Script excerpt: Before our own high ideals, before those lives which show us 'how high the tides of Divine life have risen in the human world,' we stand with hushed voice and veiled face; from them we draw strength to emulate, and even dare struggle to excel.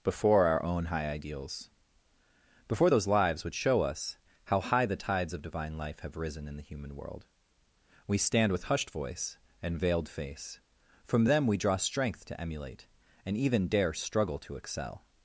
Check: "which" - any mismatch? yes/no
yes